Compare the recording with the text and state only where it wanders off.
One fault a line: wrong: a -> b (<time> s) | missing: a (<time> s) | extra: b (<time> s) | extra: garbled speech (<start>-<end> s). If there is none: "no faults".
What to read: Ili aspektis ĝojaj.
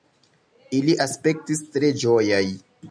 extra: tre (1.8 s)